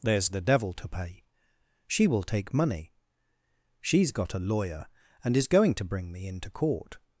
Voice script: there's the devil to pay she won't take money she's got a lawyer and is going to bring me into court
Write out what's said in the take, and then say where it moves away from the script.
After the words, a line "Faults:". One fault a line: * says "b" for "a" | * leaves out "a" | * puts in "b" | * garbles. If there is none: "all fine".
there's the devil to pay she will take money she's got a lawyer and is going to bring me into court
Faults:
* says "will" for "won't"